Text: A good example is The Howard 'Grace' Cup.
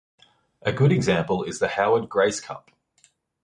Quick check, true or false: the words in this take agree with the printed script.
true